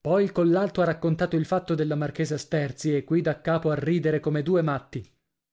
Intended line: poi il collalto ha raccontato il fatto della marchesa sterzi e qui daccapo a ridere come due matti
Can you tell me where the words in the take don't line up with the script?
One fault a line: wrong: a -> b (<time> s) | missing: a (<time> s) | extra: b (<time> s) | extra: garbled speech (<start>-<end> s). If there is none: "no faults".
no faults